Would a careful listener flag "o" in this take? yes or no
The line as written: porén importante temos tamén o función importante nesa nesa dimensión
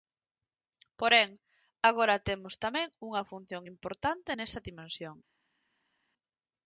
yes